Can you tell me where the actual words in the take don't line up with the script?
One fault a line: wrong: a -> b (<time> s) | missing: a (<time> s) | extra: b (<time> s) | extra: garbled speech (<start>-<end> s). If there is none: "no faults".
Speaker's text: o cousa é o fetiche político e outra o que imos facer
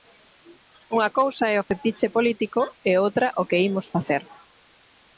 wrong: o -> unha (0.9 s)